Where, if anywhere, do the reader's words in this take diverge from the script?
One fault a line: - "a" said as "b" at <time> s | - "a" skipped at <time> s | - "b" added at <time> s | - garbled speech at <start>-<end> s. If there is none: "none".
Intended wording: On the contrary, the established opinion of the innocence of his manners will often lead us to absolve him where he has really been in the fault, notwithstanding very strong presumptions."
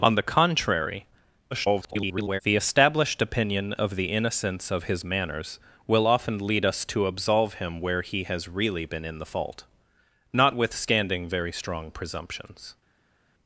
- garbled speech at 1.5-2.4 s